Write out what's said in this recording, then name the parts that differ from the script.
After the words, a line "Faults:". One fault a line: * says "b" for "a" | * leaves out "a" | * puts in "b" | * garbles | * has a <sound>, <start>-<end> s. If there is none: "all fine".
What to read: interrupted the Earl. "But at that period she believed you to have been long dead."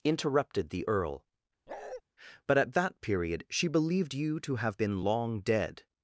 interrupted the Earl. "But at that period she believed you to have been long dead."
Faults:
* has a bark, 1.7-2.0 s